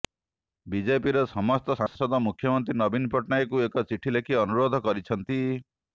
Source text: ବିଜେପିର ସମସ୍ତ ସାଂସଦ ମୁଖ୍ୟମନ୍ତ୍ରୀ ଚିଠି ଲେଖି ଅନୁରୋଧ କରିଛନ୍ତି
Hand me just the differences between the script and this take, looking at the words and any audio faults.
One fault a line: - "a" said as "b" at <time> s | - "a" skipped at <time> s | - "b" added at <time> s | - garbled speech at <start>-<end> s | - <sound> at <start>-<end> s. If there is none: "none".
- dropout at 1.9-2.0 s
- "ନବୀନ ପଟ୍ଟନାୟକଙ୍କୁ ଏକ" added at 2.8 s